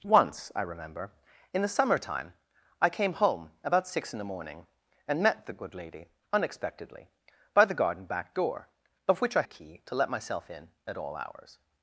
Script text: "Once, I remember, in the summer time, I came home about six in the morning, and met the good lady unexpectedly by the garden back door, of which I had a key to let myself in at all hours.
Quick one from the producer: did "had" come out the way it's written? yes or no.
no